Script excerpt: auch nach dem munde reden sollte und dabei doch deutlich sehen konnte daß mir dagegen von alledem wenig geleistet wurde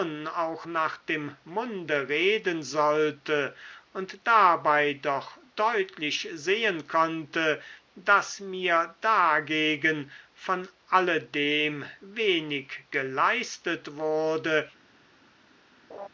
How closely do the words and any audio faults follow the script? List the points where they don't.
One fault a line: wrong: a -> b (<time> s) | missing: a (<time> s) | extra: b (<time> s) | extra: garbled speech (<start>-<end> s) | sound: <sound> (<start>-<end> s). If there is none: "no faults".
sound: laugh (15.9-16.1 s)